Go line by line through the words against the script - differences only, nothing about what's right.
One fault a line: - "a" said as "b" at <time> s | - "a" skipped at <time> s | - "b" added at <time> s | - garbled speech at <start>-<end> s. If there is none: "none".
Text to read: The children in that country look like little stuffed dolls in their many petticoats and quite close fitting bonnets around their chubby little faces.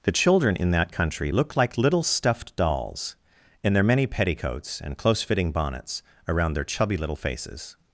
- "quite" skipped at 5.0 s